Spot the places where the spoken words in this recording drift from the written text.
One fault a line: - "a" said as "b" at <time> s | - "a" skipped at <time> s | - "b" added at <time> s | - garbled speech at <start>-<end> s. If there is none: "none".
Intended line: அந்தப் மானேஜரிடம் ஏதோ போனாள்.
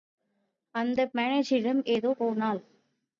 none